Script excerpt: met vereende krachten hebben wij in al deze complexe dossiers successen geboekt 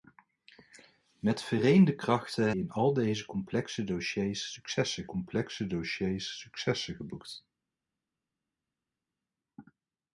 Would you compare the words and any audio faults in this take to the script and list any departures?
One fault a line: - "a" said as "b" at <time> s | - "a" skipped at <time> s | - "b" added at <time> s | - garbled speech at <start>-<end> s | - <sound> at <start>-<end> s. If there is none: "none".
- "hebben wij" skipped at 2.5 s
- "complexe dossiers successen" added at 5.0 s